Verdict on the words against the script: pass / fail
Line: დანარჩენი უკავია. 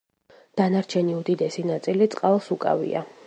fail